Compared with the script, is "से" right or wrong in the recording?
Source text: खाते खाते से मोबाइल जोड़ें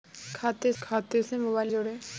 right